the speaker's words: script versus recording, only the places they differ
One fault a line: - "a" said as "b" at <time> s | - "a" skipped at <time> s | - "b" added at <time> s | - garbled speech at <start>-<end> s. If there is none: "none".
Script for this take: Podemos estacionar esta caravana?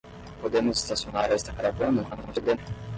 - garbled speech at 2.1-2.6 s